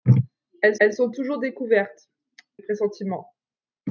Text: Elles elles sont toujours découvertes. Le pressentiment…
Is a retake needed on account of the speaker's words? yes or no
no